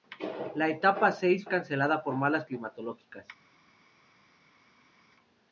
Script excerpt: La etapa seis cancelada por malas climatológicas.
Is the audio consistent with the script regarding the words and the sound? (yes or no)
yes